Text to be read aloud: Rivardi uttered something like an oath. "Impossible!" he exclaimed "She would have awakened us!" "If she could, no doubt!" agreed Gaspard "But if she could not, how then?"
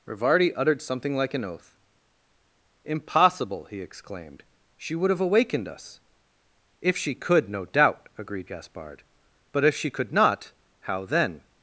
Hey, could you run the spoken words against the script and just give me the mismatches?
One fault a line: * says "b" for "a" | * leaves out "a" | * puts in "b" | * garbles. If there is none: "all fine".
all fine